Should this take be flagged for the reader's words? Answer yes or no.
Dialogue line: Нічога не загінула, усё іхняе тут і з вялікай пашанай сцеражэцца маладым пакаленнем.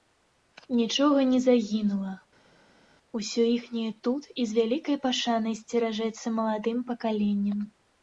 no